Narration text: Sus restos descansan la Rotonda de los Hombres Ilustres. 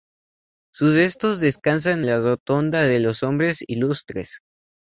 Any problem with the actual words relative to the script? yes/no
no